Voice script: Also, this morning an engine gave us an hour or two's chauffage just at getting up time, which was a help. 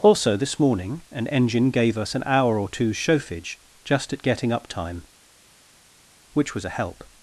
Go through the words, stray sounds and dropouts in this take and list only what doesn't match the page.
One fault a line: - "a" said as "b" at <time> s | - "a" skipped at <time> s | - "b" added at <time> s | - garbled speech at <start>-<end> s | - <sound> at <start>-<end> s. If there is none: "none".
none